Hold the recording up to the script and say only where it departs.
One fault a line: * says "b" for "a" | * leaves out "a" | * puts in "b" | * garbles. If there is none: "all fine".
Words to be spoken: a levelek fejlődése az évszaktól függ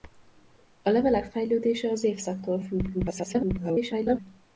* garbles